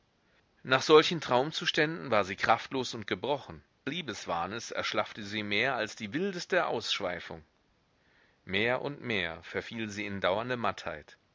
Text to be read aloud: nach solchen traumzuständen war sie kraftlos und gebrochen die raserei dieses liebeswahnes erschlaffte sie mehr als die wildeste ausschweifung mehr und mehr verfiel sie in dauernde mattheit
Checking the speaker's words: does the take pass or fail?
fail